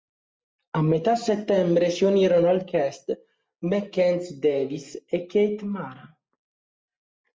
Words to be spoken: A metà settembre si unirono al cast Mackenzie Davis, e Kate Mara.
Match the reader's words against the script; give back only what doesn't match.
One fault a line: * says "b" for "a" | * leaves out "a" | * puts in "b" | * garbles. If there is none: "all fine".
all fine